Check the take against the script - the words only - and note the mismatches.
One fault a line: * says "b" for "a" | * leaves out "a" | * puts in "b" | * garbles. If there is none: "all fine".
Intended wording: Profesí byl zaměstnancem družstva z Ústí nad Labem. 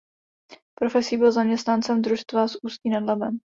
all fine